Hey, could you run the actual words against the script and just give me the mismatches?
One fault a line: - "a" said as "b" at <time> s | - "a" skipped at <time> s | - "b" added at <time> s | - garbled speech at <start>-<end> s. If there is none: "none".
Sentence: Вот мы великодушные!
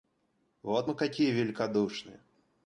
- "какие" added at 0.9 s